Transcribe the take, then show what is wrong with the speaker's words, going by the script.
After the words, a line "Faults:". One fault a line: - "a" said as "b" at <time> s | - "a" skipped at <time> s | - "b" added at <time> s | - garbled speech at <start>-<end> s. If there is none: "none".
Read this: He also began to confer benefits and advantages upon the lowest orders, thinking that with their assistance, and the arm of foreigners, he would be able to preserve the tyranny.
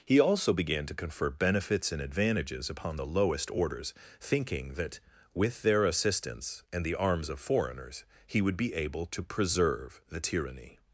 He also began to confer benefits and advantages upon the lowest orders, thinking that with their assistance, and the arms of foreigners, he would be able to preserve the tyranny.
Faults:
- "arm" said as "arms" at 7.0 s